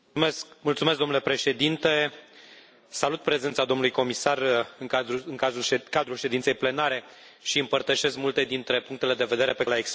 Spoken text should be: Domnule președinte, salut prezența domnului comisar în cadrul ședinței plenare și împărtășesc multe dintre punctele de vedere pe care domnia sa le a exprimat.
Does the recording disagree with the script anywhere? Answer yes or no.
yes